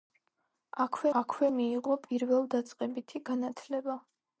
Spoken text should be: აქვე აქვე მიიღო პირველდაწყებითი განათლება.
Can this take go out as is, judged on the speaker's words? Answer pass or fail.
pass